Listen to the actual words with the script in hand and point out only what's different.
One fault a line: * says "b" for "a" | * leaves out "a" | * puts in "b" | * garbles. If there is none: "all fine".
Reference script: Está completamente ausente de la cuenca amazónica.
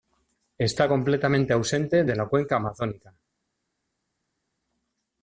all fine